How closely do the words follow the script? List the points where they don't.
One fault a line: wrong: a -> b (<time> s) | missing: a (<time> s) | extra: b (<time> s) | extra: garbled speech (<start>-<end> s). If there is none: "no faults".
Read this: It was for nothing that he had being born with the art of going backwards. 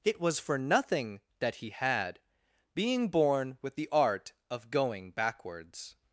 no faults